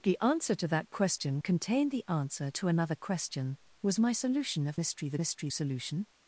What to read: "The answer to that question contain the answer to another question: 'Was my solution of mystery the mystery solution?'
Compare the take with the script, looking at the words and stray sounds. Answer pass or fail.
pass